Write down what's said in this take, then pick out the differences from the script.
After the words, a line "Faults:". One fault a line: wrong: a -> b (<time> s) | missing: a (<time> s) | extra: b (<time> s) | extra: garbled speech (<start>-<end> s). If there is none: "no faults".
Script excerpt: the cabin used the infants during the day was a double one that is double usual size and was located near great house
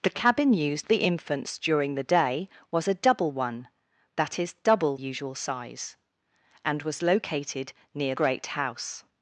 the cabin used the infants during the day was a double one that is double usual size and was located near great house
Faults:
no faults